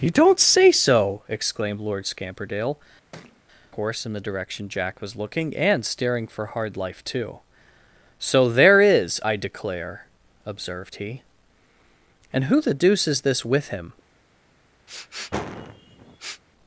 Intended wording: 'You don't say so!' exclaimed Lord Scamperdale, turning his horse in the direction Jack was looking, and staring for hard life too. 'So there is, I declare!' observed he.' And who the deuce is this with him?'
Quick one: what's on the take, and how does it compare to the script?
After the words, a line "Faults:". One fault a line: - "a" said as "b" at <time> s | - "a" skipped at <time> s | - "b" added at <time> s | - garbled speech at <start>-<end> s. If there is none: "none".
'You don't say so!' exclaimed Lord Scamperdale, horse in the direction Jack was looking, and staring for hard life too. 'So there is, I declare!' observed he.' And who the deuce is this with him?'
Faults:
- "turning his" skipped at 2.8 s